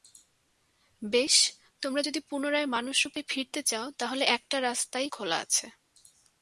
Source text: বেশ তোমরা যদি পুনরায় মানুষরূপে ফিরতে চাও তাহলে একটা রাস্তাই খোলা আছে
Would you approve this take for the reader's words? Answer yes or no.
yes